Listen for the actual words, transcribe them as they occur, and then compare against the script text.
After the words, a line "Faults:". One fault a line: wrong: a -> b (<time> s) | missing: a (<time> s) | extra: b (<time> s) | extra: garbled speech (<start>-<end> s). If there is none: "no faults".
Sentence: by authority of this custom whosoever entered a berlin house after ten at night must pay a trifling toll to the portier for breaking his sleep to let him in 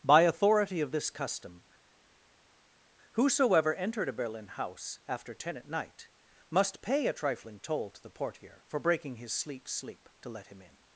by authority of this custom whosoever entered a berlin house after ten at night must pay a trifling toll to the portier for breaking his sleep sleep to let him in
Faults:
extra: sleep (9.7 s)